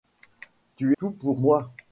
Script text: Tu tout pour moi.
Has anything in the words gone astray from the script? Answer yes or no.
no